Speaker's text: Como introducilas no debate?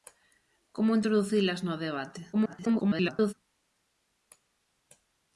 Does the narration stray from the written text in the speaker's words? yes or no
yes